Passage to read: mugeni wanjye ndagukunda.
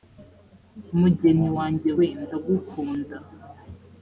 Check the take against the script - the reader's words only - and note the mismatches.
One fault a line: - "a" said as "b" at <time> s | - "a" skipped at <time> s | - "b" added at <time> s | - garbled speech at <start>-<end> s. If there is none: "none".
- "we" added at 2.0 s